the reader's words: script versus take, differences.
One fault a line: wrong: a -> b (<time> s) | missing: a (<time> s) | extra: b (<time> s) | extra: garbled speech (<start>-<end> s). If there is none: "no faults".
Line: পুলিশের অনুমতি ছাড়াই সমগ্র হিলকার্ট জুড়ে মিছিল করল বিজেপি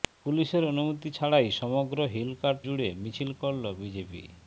no faults